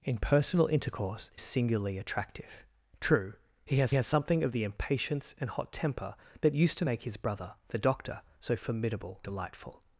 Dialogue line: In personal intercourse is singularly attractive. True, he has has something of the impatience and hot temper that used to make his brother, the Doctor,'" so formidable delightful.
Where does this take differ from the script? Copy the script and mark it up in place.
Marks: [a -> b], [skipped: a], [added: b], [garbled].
In personal intercourse is singularly attractive. True, he has has something of the impatience and hot temper that used to make his brother, the Doctor,'" so formidable delightful.